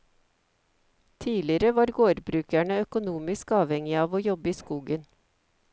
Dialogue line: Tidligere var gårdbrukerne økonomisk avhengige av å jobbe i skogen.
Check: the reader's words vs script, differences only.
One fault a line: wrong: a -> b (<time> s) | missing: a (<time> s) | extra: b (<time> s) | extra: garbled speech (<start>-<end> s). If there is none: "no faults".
no faults